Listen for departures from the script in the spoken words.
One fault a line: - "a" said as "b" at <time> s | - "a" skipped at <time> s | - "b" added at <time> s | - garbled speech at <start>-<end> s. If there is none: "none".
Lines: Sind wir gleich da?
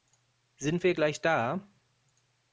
none